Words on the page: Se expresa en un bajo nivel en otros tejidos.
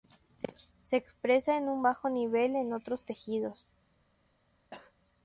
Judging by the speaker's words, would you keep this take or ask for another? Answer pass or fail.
pass